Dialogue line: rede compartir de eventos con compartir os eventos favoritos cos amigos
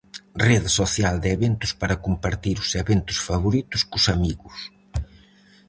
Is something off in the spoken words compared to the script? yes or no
yes